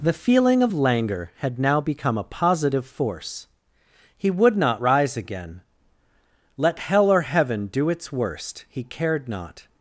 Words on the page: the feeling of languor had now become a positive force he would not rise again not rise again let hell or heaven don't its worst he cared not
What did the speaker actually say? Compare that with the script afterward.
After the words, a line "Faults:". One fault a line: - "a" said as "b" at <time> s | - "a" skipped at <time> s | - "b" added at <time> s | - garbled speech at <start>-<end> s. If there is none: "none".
the feeling of languor had now become a positive force he would not rise again let hell or heaven do its worst he cared not
Faults:
- "not rise again" skipped at 5.6 s
- "don't" said as "do" at 7.7 s